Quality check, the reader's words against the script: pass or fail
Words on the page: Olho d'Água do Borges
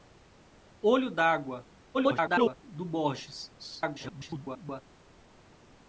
fail